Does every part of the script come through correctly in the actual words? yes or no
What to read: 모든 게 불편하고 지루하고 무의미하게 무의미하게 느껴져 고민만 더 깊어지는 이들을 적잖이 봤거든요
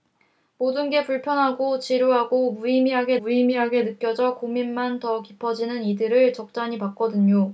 yes